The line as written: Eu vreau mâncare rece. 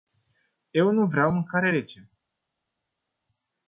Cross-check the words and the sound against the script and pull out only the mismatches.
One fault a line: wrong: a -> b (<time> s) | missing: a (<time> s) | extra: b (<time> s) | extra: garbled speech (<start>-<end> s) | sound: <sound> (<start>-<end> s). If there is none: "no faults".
extra: nu (0.9 s)